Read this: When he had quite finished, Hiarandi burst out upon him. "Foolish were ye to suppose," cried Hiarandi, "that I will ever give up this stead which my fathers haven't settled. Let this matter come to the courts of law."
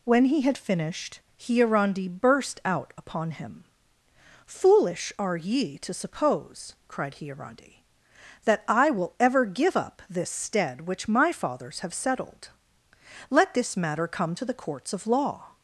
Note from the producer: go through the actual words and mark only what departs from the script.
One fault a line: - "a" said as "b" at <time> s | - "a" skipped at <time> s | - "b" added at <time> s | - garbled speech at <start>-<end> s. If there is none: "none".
- "quite" skipped at 0.6 s
- "were" said as "are" at 5.2 s
- "haven't" said as "have" at 11.8 s